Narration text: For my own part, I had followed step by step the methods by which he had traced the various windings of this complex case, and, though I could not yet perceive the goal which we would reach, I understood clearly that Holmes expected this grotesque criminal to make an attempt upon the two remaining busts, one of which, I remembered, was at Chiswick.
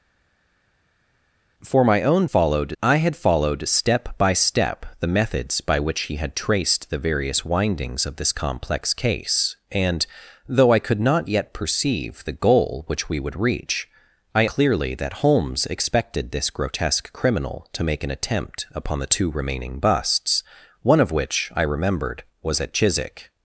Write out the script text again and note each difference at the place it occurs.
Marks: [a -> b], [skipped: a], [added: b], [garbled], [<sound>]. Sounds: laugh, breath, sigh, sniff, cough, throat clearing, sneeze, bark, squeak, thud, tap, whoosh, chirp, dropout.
For my own [part, -> followed] I had followed step by step the methods by which he had traced the various windings of this complex case, and, though I could not yet perceive the goal which we would reach, I [skipped: understood] clearly that Holmes expected this grotesque criminal to make an attempt upon the two remaining busts, one of which, I remembered, was at Chiswick.